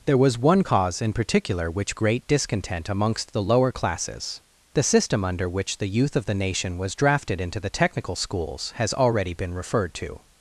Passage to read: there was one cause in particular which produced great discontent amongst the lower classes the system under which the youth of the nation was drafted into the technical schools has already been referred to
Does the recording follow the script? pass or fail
fail